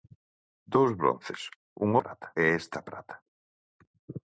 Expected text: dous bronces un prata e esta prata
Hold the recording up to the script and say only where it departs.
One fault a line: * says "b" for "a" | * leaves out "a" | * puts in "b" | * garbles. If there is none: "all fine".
all fine